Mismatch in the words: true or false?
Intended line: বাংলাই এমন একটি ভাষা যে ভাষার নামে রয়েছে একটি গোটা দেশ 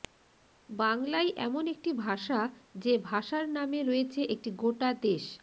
false